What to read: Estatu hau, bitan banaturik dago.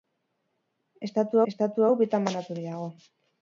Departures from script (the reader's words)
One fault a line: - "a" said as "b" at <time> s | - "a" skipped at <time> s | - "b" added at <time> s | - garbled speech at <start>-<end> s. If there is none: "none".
- "estatu" added at 1.5 s